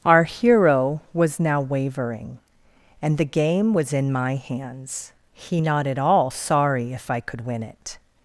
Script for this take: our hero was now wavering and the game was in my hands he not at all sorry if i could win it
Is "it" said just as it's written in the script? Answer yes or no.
yes